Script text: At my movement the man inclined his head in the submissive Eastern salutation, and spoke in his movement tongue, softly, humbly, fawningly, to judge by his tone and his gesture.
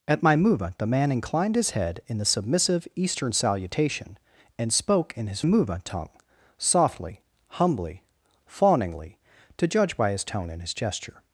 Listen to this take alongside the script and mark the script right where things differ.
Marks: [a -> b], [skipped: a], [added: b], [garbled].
At my movement the man inclined his head in the submissive Eastern salutation, and spoke in his movement tongue, softly, humbly, fawningly, to judge by his tone and his gesture.